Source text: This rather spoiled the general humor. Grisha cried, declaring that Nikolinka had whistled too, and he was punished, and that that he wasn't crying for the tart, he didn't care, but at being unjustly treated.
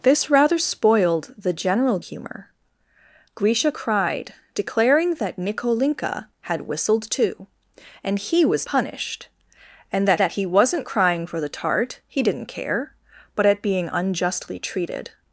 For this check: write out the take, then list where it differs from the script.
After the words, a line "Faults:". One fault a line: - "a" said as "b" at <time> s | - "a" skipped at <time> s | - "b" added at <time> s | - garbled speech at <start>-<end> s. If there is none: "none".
This rather spoiled the general humor. Grisha cried, declaring that Nikolinka had whistled too, and he was punished, and that that he wasn't crying for the tart, he didn't care, but at being unjustly treated.
Faults:
none